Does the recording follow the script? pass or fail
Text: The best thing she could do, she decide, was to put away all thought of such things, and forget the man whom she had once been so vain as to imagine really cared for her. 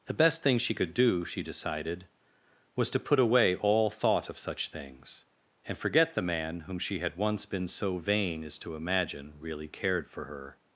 fail